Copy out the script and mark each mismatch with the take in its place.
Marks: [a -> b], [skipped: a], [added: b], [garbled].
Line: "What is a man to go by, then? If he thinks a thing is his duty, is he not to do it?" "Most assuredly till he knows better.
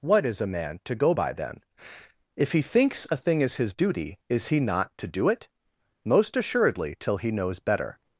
"What is a man to go by, then? If he thinks a thing is his duty, is he not to do it?" "Most assuredly till he knows better.